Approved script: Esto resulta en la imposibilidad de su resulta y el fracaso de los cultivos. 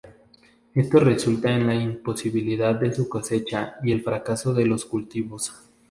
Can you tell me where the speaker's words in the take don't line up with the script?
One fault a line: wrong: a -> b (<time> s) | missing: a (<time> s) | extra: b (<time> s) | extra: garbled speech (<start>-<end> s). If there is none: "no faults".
wrong: resulta -> cosecha (3.1 s)